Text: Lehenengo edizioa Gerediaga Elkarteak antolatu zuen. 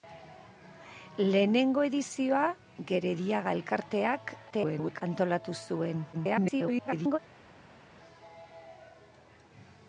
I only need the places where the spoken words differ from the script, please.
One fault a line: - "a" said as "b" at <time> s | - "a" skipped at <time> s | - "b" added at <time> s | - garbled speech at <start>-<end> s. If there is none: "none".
- garbled speech at 4.5-5.0 s
- garbled speech at 6.1-7.2 s